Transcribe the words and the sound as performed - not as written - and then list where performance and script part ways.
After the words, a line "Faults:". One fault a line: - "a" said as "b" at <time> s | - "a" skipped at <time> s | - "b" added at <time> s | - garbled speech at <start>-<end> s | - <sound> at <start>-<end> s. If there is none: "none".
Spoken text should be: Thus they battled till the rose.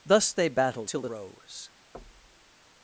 Thus they battled till the rose.
Faults:
- thud at 1.9-2.5 s